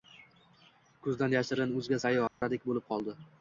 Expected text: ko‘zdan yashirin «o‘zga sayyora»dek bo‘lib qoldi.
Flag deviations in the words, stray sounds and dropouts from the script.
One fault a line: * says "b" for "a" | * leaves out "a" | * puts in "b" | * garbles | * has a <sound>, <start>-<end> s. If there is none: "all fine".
* has a dropout, 2.3-2.4 s